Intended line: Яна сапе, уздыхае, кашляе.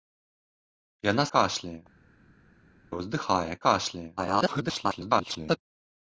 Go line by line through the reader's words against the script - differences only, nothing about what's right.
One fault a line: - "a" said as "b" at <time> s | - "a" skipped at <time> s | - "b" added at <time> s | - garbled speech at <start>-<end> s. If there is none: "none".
- "сапе" said as "кашляе" at 1.3 s
- garbled speech at 4.2-5.6 s